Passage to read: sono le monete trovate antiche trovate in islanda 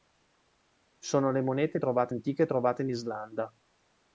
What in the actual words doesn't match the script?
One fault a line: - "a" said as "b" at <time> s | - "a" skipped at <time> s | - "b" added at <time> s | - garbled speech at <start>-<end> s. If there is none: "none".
none